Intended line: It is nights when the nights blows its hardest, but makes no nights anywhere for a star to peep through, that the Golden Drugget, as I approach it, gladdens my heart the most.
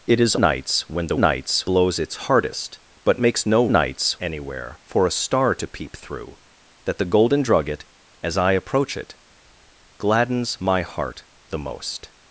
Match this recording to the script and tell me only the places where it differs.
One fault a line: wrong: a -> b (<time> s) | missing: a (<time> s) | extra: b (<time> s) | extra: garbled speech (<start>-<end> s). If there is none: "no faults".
no faults